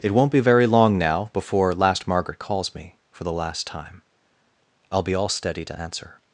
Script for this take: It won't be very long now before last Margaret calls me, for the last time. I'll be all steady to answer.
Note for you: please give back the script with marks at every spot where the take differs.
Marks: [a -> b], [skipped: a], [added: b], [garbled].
It won't be very long now before last Margaret calls me, for the last time. I'll be all steady to answer.